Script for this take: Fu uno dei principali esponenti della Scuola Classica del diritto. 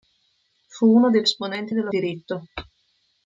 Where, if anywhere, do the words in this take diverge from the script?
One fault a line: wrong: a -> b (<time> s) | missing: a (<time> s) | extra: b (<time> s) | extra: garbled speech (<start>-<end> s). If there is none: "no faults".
missing: principali (1.2 s)
missing: Scuola Classica del (1.9 s)